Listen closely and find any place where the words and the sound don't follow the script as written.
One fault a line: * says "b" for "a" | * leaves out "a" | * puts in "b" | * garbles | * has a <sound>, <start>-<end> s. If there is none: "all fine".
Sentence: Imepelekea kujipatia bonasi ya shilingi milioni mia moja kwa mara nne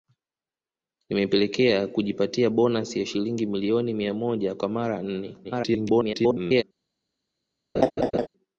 * garbles
* has a laugh, 7.8-8.3 s